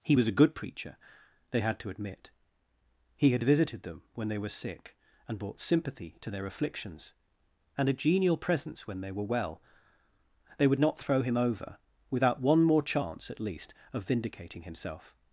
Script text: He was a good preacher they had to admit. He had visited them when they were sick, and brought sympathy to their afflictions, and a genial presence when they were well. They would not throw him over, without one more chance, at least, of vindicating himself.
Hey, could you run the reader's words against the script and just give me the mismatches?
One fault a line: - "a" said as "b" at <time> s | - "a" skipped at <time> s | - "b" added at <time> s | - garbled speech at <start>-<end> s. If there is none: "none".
none